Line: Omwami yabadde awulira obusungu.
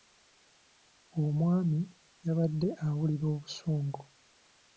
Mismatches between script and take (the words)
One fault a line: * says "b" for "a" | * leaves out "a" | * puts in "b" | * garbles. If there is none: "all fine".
all fine